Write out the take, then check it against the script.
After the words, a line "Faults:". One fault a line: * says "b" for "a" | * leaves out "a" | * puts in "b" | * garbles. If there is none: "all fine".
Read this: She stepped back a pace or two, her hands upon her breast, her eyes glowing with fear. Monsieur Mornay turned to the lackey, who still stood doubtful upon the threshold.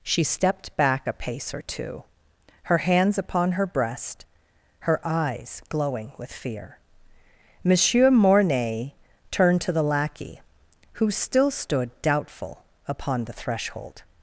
She stepped back a pace or two, her hands upon her breast, her eyes glowing with fear. Monsieur Mornay turned to the lackey, who still stood doubtful upon the threshold.
Faults:
all fine